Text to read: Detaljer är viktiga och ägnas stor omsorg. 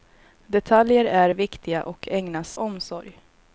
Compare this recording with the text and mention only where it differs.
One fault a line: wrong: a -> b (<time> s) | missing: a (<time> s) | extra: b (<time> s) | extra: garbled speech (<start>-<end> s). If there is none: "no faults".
missing: stor (2.5 s)